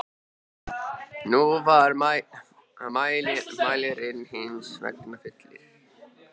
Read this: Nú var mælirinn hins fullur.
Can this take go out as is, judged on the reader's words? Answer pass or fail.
fail